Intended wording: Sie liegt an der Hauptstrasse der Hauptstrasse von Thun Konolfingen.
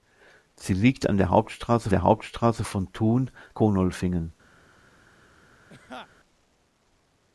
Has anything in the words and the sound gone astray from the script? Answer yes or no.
yes